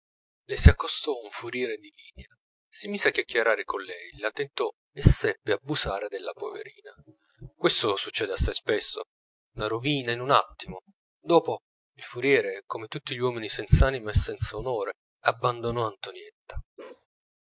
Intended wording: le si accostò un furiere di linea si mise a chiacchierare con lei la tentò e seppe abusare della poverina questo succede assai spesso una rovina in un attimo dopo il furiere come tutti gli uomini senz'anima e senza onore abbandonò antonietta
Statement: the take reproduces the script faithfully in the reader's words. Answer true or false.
true